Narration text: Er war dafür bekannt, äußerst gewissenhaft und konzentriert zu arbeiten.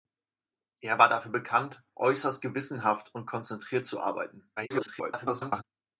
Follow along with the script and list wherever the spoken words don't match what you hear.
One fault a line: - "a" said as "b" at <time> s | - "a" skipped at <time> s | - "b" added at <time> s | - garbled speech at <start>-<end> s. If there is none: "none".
- garbled speech at 4.6-5.6 s